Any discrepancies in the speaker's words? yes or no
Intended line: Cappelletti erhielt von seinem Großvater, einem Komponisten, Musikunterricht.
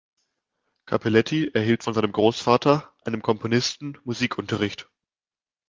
no